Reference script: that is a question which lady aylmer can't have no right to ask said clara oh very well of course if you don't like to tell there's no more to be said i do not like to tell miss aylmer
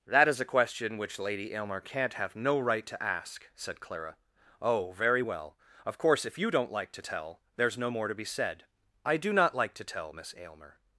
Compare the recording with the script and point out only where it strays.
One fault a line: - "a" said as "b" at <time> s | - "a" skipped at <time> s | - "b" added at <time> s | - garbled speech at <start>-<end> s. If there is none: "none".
none